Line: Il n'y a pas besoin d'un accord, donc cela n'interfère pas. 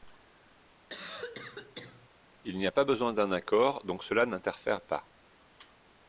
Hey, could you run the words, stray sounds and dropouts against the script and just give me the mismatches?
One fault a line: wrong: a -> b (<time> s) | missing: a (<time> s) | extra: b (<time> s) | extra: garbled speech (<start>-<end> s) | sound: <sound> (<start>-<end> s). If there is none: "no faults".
sound: cough (0.9-2.1 s)